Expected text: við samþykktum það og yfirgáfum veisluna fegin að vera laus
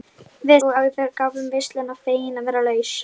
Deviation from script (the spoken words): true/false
true